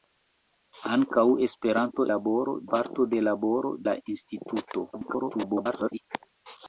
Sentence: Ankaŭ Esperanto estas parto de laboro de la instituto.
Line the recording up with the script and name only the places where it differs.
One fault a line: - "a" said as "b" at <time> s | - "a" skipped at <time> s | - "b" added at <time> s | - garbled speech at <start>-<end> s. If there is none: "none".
- "estas" said as "laboro" at 2.1 s
- "de" skipped at 3.8 s
- garbled speech at 4.9-6.0 s